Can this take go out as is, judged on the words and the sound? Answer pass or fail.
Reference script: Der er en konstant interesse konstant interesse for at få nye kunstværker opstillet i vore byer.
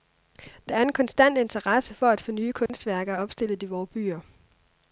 fail